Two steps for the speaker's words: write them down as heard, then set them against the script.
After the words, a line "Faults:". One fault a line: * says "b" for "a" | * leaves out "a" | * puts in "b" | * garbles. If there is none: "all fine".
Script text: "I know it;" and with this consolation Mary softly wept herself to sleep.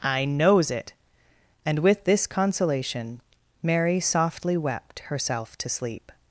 "I knows it;" and with this consolation Mary softly wept herself to sleep.
Faults:
* says "knows" for "know"